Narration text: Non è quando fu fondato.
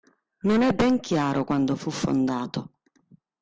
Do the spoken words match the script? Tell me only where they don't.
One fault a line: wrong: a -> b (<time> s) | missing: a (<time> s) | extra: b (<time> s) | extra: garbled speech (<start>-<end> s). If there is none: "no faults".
extra: ben chiaro (0.7 s)